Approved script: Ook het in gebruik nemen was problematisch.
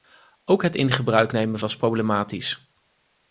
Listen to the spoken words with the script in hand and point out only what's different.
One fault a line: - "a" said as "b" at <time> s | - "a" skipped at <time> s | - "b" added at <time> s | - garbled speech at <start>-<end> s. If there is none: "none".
none